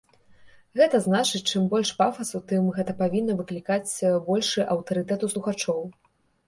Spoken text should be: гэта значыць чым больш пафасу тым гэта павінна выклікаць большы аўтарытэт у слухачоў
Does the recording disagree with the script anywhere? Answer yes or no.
no